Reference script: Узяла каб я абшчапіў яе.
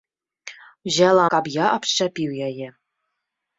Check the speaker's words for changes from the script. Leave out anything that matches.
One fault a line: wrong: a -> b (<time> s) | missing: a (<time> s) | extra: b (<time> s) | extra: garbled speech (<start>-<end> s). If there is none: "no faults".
no faults